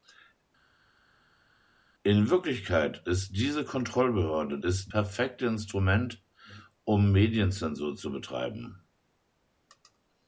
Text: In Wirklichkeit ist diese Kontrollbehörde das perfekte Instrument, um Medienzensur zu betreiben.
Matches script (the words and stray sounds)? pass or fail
fail